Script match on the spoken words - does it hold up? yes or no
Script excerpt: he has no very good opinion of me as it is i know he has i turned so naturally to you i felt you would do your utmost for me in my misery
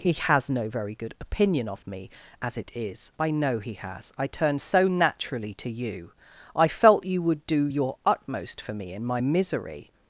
yes